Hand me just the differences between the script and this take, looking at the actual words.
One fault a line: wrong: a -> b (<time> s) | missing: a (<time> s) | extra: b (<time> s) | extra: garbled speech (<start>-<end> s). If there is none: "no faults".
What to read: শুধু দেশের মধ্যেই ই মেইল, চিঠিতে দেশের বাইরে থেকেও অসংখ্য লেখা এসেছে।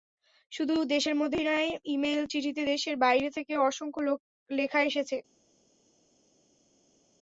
extra: নয় (1.4 s)